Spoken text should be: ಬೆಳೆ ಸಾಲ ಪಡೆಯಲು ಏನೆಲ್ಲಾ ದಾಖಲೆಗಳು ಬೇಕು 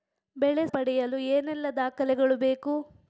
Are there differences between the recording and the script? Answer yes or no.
yes